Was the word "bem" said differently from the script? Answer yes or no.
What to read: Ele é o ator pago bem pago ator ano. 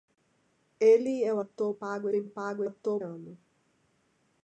no